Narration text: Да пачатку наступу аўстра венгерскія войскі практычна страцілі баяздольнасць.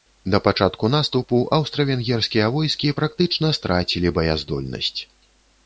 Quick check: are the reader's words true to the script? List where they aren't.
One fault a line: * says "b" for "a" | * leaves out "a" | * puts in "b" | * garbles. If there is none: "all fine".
all fine